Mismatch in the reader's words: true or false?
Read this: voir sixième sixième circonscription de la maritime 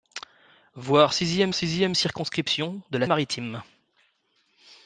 false